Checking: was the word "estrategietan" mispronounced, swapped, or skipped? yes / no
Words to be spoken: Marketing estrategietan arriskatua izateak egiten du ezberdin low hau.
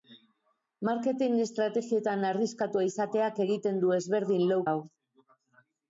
no